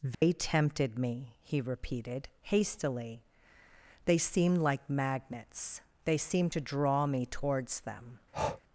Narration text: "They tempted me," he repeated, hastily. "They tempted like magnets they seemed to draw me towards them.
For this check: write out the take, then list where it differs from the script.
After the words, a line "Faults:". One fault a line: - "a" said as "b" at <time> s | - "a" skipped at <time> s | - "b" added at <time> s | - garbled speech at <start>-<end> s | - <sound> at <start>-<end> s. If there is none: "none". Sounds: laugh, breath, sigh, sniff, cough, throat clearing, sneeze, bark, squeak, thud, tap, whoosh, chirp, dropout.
"They tempted me," he repeated, hastily. "They seemed like magnets they seemed to draw me towards them.
Faults:
- dropout at 0.1-0.2 s
- "tempted" said as "seemed" at 4.2 s
- breath at 8.3-8.6 s